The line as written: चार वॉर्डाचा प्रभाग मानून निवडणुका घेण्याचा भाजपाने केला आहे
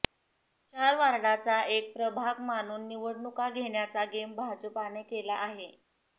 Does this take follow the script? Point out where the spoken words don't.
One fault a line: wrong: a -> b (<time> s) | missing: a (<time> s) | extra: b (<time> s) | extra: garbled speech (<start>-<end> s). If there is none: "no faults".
extra: एक (1.7 s)
extra: गेम (4.1 s)